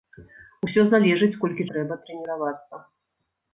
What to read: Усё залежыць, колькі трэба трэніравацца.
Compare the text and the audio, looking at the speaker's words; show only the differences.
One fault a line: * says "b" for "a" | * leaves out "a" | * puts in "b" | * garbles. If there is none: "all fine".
all fine